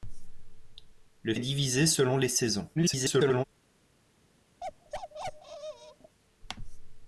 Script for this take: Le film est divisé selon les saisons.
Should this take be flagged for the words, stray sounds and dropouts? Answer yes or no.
yes